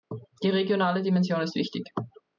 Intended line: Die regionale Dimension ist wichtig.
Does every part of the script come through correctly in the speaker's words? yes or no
yes